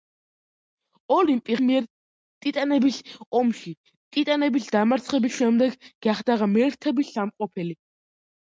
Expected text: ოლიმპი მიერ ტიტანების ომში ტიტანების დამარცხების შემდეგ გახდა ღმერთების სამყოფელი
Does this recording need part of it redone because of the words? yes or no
no